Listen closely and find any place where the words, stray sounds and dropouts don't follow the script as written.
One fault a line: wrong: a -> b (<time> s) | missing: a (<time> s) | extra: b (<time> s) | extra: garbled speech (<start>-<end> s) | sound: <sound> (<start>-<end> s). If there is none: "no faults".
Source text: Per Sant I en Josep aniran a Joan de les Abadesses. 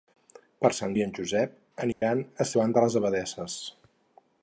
sound: dropout (1.9-2.0 s)